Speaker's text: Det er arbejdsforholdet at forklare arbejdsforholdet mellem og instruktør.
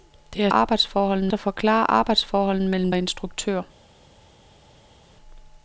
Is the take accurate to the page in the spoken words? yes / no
yes